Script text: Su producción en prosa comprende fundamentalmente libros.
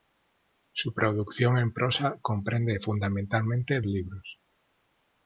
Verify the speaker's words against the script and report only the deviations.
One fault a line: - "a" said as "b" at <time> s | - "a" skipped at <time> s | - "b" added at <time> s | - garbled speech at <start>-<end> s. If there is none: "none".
none